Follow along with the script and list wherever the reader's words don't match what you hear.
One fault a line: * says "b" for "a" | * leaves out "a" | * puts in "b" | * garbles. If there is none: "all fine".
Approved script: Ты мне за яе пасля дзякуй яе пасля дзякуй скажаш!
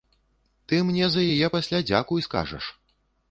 * leaves out "яе пасля дзякуй"